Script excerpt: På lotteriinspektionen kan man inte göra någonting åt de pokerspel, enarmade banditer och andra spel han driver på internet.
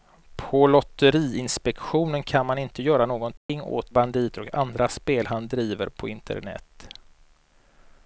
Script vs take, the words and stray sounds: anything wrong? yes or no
yes